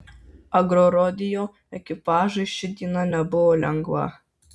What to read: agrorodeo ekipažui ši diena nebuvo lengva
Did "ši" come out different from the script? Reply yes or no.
no